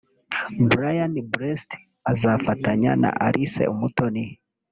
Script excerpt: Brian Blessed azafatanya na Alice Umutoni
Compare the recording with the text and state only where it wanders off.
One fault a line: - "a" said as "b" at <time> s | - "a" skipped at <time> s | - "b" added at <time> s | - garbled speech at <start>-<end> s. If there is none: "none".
none